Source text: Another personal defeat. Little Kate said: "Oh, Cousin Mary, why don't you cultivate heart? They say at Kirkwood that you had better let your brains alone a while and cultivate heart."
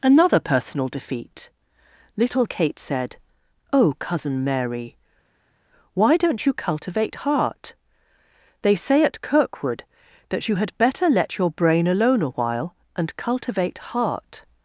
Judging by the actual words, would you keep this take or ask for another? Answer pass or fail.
fail